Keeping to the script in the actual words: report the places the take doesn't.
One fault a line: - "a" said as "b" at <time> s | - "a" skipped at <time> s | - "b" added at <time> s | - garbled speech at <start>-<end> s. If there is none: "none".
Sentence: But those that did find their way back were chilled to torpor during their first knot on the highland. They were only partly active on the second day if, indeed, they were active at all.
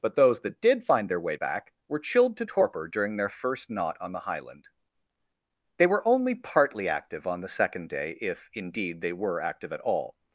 none